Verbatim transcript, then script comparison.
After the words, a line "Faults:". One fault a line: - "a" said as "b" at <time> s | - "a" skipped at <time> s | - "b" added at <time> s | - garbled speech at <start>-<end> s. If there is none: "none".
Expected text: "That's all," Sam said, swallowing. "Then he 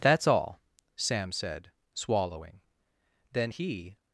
"That's all," Sam said, swallowing. "Then he
Faults:
none